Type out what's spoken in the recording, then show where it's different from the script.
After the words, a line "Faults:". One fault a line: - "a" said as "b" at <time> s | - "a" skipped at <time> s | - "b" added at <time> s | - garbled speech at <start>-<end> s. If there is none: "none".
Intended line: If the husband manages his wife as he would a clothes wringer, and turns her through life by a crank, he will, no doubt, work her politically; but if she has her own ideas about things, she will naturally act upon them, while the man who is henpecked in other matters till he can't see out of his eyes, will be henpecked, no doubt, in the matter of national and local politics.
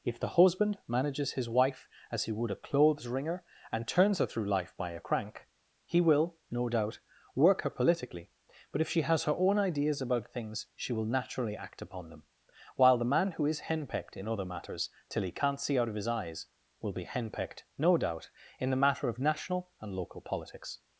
If the husband manages his wife as he would a clothes wringer, and turns her through life by a crank, he will, no doubt, work her politically; but if she has her own ideas about things, she will naturally act upon them, while the man who is henpecked in other matters till he can't see out of his eyes, will be henpecked, no doubt, in the matter of national and local politics.
Faults:
none